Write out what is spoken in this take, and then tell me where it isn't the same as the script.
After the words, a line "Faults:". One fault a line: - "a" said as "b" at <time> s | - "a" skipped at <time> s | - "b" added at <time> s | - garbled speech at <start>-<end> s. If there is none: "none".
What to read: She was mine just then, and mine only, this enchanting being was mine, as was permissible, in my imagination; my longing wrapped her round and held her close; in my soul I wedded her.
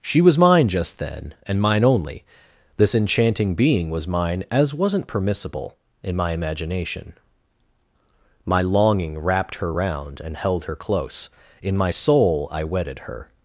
She was mine just then, and mine only, this enchanting being was mine, as wasn't permissible, in my imagination; my longing wrapped her round and held her close; in my soul I wedded her.
Faults:
- "was" said as "wasn't" at 4.7 s